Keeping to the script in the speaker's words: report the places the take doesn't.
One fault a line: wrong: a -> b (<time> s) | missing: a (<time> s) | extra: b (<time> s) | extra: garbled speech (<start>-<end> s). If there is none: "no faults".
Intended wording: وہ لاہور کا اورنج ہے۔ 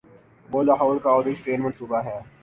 extra: ٹرین منصوبہ (1.4 s)